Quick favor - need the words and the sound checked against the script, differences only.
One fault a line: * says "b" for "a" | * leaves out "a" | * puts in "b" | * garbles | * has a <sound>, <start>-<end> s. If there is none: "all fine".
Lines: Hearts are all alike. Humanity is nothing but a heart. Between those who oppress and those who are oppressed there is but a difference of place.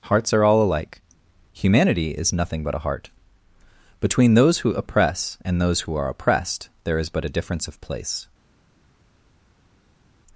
all fine